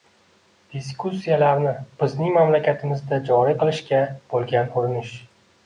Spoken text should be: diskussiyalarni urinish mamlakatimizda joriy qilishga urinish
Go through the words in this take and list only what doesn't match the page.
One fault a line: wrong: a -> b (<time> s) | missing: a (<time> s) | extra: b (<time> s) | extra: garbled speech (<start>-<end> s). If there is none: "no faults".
wrong: urinish -> bizning (2.0 s)
extra: bo‘lgan (4.3 s)